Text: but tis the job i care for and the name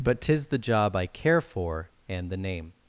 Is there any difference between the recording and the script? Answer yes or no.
no